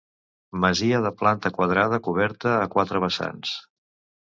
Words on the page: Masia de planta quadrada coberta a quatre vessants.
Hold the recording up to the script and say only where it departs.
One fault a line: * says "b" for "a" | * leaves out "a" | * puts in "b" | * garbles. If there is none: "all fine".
all fine